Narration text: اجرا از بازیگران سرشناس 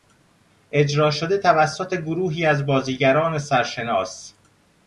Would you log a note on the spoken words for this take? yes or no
yes